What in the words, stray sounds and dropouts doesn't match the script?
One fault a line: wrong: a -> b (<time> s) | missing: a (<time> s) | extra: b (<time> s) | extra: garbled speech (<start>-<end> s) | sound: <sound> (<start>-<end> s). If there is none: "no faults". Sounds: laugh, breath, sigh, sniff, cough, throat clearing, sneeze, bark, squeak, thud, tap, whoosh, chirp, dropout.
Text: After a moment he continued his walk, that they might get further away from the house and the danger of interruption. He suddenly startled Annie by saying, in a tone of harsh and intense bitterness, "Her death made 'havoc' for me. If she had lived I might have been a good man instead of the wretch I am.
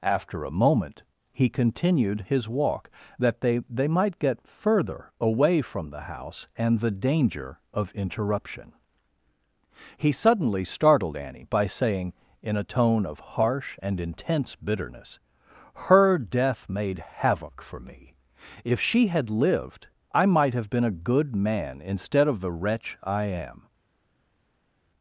extra: they (3.7 s)